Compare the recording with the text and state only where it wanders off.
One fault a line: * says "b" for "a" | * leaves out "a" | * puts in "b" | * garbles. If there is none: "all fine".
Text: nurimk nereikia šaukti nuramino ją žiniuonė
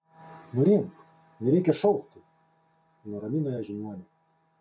all fine